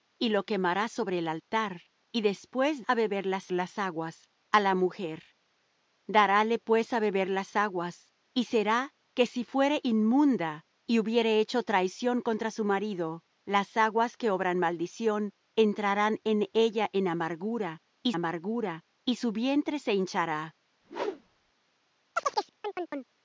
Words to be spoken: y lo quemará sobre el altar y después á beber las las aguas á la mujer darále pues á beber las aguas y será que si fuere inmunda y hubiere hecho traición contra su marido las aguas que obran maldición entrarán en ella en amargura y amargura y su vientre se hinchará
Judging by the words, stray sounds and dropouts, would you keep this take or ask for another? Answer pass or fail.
fail